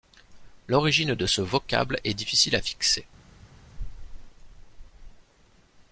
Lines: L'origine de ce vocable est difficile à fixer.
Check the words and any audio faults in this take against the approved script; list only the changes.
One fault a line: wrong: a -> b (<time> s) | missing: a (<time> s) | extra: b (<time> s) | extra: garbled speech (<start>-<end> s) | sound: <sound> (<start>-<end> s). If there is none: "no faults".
no faults